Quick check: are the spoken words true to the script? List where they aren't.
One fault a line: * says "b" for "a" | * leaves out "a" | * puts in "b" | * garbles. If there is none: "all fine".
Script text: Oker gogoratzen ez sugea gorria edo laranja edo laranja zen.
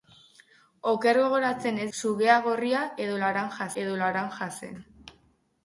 all fine